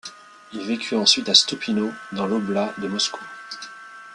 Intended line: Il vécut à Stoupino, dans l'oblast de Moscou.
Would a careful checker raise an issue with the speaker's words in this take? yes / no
yes